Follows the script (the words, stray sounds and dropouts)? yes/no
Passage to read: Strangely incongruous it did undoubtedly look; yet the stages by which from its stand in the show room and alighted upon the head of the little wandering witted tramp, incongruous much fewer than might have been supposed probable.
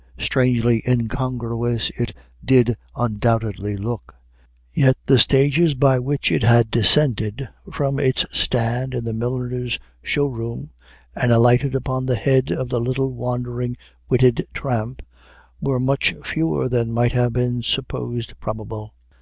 no